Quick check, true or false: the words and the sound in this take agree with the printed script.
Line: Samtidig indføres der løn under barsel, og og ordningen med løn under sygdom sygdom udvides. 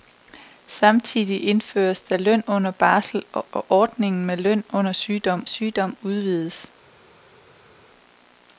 true